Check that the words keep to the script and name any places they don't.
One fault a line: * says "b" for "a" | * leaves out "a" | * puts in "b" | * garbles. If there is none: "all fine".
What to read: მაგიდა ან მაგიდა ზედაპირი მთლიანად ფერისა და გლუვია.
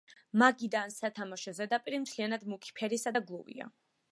* says "სათამაშო" for "მაგიდა"
* puts in "მუქი"